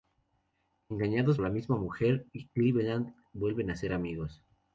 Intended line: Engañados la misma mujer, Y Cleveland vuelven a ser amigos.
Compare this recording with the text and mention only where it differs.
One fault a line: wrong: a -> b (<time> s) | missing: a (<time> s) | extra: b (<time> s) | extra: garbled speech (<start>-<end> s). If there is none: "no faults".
no faults